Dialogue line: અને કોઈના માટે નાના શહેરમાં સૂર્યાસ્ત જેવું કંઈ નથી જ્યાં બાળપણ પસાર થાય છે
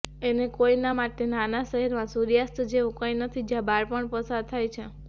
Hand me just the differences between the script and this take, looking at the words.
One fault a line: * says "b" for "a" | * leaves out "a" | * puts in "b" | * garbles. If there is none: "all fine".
all fine